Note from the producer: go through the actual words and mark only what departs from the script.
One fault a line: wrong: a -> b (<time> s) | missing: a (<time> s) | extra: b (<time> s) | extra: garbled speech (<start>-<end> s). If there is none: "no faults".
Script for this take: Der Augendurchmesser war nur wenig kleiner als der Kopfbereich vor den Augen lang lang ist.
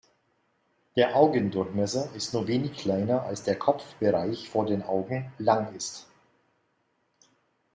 wrong: war -> ist (2.1 s)
missing: lang (5.7 s)